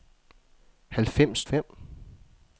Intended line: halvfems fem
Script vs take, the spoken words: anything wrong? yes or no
no